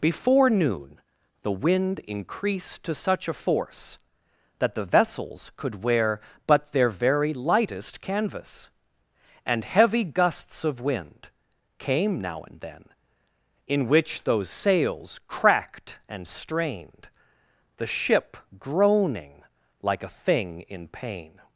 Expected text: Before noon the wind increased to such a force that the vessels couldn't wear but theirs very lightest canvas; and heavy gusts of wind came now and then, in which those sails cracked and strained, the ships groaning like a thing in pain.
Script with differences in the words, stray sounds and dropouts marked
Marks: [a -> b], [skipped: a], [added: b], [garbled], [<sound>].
Before noon the wind increased to such a force that the vessels [couldn't -> could] wear but [theirs -> their] very lightest canvas; and heavy gusts of wind came now and then, in which those sails cracked and strained, the [ships -> ship] groaning like a thing in pain.